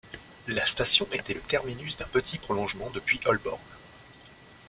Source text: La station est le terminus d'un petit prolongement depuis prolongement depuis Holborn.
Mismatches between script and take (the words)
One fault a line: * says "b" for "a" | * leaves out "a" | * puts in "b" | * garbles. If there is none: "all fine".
* says "était" for "est"
* leaves out "prolongement depuis"